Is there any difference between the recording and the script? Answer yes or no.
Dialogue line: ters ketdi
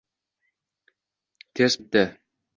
no